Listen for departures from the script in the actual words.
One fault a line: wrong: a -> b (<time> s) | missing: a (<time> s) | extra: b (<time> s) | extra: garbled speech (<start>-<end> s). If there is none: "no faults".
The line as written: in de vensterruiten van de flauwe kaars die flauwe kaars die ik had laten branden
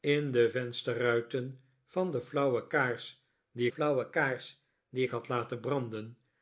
no faults